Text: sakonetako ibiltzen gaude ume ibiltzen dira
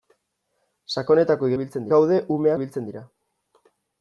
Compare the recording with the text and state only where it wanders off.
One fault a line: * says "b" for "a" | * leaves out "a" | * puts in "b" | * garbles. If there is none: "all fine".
all fine